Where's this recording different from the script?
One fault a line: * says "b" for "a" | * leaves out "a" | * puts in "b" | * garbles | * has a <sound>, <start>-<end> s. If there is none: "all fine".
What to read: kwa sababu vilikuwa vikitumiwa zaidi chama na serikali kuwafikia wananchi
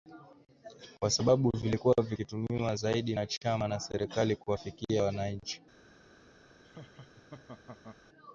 * puts in "na"
* has a laugh, 6.6-8.0 s